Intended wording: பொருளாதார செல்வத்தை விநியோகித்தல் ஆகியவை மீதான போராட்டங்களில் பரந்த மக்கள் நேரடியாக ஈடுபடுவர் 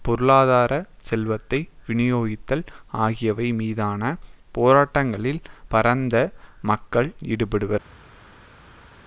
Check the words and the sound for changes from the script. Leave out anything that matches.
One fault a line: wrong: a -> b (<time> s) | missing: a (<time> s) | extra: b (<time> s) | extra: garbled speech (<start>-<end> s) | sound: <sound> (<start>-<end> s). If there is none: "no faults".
missing: நேரடியாக (7.1 s)